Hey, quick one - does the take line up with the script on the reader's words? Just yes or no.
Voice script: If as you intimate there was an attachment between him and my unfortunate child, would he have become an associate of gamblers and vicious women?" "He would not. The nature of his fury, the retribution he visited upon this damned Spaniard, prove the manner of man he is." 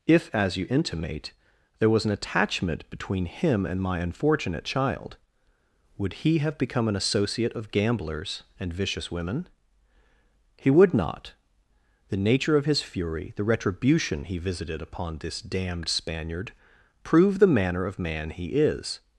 yes